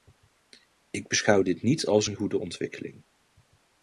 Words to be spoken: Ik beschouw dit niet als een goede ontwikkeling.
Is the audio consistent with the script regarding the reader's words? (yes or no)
yes